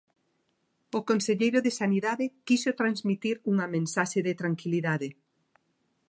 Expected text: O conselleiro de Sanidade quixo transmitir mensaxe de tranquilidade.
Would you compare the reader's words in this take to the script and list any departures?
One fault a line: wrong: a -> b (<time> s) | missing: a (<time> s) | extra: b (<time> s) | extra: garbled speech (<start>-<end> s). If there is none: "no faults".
extra: unha (3.5 s)